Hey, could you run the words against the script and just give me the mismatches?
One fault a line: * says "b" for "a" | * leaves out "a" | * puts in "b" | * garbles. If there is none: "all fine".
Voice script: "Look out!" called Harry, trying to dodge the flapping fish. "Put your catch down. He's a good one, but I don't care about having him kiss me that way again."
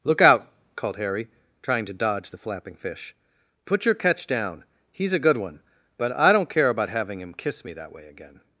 all fine